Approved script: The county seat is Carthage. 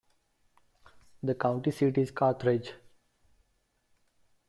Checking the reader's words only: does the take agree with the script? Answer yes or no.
yes